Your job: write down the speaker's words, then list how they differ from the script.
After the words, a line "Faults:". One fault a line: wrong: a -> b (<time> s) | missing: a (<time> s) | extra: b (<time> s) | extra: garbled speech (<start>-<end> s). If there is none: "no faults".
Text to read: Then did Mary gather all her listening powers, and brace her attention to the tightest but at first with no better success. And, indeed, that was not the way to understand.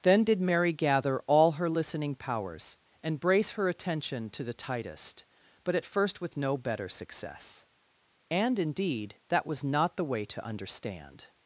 Then did Mary gather all her listening powers, and brace her attention to the tightest but at first with no better success. And, indeed, that was not the way to understand.
Faults:
no faults